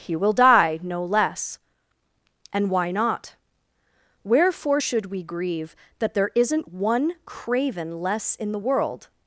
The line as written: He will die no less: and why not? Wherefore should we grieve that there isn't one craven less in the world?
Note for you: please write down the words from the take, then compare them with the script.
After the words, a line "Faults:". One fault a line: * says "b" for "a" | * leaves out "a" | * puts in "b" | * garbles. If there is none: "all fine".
He will die no less: and why not? Wherefore should we grieve that there isn't one craven less in the world?
Faults:
all fine